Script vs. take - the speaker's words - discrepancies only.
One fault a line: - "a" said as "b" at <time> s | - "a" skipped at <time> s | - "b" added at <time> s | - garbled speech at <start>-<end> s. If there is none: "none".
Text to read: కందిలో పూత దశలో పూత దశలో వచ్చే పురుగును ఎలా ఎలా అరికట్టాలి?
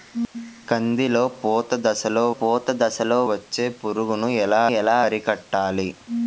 none